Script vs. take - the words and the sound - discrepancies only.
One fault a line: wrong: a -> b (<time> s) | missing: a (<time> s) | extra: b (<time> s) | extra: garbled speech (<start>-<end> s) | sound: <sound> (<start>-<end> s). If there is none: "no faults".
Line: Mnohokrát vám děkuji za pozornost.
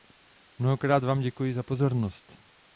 no faults